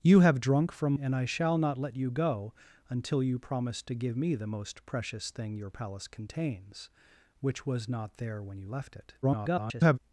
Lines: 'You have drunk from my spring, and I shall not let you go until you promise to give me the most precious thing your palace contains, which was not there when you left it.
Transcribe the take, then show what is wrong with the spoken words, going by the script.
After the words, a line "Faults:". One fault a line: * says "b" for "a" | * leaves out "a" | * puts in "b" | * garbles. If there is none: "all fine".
'You have drunk from and I shall not let you go until you promise to give me the most precious thing your palace contains, which was not there when you left it. [garbled]
Faults:
* leaves out "my spring"
* garbles